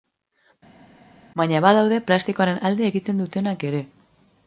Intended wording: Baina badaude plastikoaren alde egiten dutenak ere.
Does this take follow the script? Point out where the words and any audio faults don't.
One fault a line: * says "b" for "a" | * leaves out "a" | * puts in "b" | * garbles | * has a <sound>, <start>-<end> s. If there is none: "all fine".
all fine